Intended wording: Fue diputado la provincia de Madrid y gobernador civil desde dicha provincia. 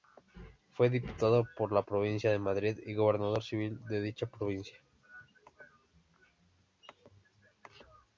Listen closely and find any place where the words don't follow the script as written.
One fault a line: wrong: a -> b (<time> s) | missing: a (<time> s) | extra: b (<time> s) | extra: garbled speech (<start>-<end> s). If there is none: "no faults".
extra: por (1.6 s)
wrong: desde -> de (3.9 s)